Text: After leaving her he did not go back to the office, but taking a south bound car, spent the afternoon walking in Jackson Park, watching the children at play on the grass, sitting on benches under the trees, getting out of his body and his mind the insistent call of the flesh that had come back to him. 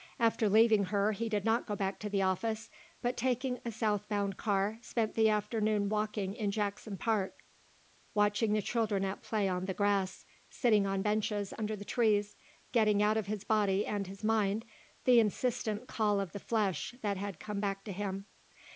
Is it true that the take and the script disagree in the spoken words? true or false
false